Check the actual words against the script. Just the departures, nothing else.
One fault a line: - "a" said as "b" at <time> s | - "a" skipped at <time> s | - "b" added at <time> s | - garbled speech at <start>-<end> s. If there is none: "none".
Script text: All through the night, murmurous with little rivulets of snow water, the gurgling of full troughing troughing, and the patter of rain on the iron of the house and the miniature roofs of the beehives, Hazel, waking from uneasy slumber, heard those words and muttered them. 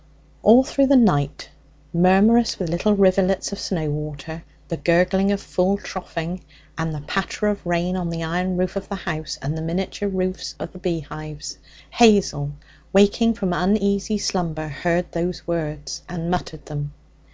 - "troughing" skipped at 6.4 s
- "roof" added at 8.6 s